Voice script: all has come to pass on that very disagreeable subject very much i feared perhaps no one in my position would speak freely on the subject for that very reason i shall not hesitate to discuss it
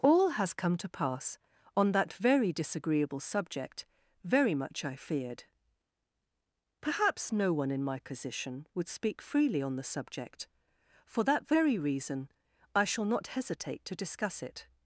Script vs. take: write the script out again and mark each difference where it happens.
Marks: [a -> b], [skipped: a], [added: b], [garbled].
all has come to pass on that very disagreeable subject very much i feared perhaps no one in my position would speak freely on the subject for that very reason i shall not hesitate to discuss it